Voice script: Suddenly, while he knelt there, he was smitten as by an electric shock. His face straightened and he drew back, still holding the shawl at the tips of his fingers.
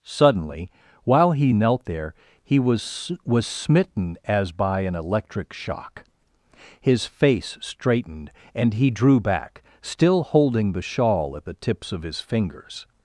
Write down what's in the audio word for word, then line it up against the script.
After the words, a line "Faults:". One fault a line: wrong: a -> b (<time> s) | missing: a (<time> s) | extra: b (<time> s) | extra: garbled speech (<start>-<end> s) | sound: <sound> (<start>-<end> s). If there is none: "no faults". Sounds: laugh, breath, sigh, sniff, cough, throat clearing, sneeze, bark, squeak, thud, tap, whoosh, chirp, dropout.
Suddenly, while he knelt there, he was was smitten as by an electric shock. His face straightened and he drew back, still holding the shawl at the tips of his fingers.
Faults:
extra: was (3.3 s)